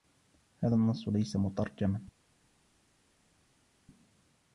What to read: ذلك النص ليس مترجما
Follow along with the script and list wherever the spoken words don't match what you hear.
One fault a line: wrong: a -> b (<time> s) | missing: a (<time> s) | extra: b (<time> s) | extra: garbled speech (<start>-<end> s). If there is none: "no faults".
wrong: ذلك -> هذا (0.6 s)